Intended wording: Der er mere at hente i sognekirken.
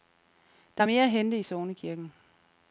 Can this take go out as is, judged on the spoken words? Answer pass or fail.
pass